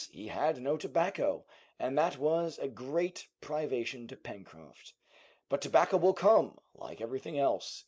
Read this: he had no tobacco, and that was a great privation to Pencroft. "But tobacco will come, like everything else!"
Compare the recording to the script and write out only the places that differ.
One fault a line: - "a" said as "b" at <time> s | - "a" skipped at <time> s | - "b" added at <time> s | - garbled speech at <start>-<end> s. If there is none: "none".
none